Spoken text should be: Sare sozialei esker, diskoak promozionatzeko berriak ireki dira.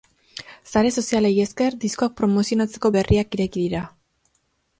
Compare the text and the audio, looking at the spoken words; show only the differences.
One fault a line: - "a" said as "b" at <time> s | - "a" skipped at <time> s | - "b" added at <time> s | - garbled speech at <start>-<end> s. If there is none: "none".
none